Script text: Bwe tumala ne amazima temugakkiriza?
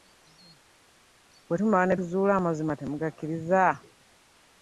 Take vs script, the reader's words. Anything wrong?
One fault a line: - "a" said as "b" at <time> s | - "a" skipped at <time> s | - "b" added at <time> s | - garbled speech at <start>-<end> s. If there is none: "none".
- "tuzuula" added at 2.0 s